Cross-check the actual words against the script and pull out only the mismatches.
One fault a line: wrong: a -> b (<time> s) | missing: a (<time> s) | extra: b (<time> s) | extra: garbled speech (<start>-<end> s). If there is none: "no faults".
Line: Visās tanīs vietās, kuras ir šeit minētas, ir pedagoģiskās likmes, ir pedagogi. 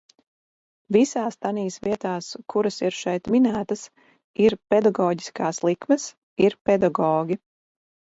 no faults